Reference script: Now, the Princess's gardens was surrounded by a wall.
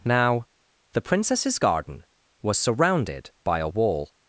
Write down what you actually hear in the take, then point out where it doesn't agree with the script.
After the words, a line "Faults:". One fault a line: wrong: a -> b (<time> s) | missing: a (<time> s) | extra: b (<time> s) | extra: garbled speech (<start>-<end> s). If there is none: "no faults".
Now, the Princess's garden was surrounded by a wall.
Faults:
wrong: gardens -> garden (1.6 s)